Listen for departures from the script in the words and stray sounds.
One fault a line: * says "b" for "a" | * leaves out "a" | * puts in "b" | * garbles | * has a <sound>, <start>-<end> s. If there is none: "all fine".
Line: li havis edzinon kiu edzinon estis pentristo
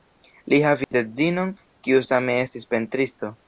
* has a dropout, 0.8-0.9 s
* says "same" for "edzinon"